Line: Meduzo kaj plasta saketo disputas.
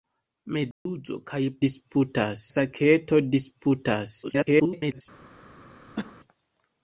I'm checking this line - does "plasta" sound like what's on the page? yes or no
no